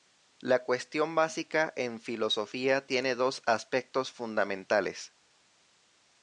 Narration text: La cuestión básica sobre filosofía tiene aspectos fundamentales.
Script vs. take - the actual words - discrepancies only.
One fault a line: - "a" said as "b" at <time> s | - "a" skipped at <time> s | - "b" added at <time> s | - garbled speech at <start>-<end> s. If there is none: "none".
- "sobre" said as "en" at 1.8 s
- "dos" added at 3.2 s